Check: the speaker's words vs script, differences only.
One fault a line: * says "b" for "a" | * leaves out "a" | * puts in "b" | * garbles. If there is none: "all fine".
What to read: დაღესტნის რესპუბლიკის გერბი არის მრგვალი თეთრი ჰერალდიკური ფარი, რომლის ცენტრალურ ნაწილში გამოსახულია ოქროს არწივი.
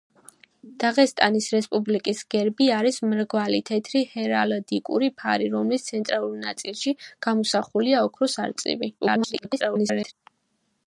* garbles